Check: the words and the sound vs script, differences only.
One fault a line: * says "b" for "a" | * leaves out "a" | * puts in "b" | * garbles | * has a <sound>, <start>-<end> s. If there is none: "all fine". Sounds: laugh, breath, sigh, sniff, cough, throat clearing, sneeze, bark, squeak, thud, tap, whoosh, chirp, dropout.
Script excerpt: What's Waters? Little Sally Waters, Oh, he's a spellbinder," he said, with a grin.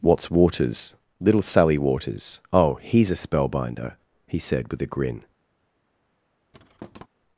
* has a thud, 6.5-7.1 s